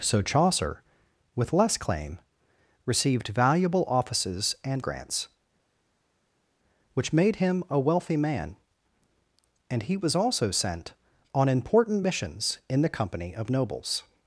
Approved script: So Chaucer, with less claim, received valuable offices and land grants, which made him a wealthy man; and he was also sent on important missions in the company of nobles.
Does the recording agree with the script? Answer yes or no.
no